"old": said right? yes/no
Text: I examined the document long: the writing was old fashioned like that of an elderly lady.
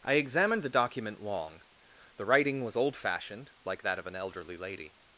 yes